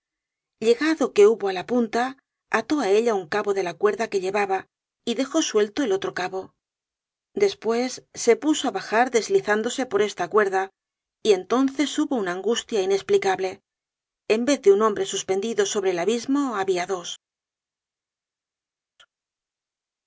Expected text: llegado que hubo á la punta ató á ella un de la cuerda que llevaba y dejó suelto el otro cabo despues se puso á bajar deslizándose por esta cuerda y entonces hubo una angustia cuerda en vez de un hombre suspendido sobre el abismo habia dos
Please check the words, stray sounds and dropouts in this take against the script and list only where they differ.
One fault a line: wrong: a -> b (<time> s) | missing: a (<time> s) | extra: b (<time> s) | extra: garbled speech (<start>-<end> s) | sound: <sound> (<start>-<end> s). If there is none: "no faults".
extra: cabo (3.4 s)
wrong: cuerda -> inesplicable (12.9 s)